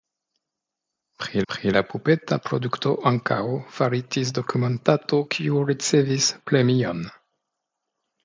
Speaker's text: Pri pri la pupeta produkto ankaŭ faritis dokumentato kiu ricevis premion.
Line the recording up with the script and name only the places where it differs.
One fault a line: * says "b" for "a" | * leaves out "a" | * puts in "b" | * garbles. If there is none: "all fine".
all fine